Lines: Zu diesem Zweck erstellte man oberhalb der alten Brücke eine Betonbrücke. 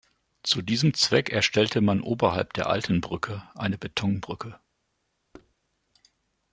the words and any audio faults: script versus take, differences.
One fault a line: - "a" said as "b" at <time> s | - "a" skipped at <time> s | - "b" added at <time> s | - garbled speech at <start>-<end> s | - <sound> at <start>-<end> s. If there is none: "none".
- thud at 5.3-5.5 s